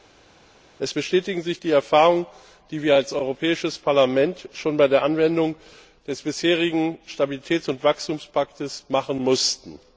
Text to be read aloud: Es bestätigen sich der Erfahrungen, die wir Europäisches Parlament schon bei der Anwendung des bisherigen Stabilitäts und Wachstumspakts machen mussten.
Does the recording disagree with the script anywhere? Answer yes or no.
yes